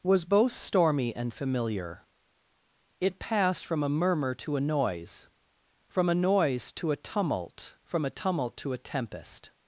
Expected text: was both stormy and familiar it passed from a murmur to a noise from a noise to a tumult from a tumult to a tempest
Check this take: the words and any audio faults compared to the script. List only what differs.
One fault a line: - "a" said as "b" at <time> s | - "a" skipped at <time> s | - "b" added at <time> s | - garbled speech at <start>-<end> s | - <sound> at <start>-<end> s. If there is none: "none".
none